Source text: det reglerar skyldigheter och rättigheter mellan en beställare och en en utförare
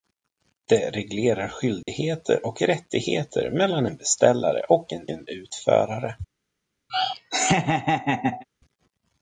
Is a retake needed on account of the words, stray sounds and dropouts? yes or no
yes